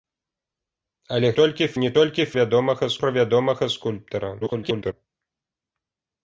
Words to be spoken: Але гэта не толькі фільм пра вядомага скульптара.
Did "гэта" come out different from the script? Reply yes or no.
yes